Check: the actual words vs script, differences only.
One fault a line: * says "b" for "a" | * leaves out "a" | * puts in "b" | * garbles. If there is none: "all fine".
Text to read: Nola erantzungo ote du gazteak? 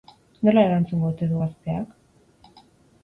all fine